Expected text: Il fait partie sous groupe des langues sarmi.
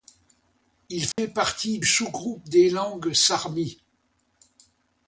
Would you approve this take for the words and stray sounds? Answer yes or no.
no